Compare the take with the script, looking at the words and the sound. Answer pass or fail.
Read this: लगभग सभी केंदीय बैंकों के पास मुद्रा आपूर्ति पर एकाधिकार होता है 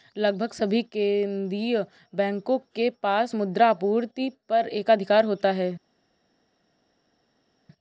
pass